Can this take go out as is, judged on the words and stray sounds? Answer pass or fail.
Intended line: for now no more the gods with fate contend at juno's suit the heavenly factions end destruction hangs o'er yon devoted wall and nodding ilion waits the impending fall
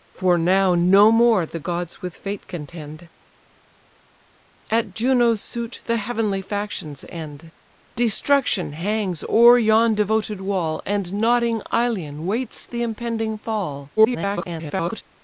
fail